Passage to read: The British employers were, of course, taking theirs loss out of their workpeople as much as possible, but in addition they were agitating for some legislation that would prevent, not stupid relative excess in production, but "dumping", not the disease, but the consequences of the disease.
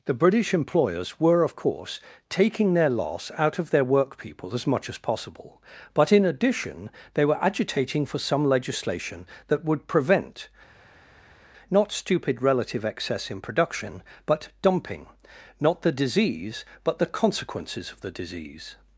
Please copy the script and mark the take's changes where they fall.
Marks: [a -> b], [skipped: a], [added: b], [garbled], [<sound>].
The British employers were, of course, taking [theirs -> their] loss out of their workpeople as much as possible, but in addition they were agitating for some legislation that would prevent, not stupid relative excess in production, but "dumping", not the disease, but the consequences of the disease.